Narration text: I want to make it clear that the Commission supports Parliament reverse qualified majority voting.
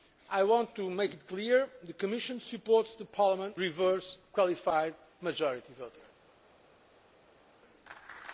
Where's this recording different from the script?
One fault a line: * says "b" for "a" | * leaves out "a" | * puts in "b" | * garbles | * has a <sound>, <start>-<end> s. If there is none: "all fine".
all fine